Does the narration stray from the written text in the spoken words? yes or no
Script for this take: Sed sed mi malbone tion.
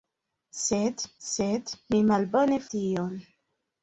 no